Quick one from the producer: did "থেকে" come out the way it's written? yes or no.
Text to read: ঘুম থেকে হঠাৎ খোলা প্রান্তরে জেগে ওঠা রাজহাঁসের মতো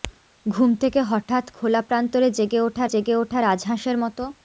yes